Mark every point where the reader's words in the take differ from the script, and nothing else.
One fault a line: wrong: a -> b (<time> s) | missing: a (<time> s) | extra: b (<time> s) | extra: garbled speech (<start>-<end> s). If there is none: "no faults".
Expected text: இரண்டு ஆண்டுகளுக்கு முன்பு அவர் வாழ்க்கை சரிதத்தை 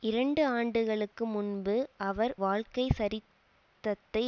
no faults